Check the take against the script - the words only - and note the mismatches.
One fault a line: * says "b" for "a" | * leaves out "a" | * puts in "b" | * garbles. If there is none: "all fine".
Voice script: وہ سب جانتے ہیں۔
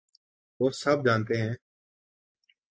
all fine